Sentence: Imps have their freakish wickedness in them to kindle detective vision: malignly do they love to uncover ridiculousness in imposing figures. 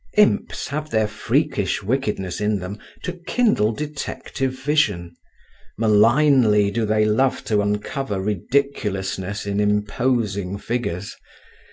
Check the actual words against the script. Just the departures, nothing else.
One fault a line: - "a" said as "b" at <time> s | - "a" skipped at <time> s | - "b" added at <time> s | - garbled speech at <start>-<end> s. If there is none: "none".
none